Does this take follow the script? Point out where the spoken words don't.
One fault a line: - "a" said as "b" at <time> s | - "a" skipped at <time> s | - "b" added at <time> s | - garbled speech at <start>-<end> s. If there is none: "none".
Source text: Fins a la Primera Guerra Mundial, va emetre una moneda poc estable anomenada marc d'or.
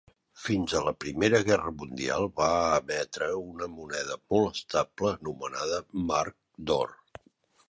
- "poc" said as "molt" at 4.3 s